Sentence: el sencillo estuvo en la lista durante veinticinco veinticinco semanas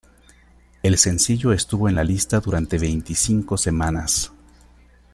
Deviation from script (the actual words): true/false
true